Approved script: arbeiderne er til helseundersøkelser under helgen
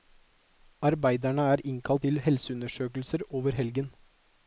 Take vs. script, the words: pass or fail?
fail